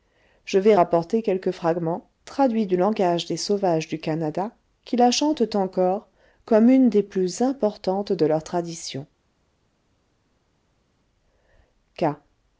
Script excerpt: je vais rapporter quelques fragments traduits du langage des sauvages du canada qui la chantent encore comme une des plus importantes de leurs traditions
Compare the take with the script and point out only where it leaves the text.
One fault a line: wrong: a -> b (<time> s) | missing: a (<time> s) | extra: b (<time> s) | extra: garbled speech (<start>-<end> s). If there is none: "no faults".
no faults